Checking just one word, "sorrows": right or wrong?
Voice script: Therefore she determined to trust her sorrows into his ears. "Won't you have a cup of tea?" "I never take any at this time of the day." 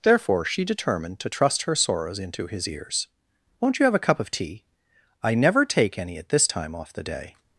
right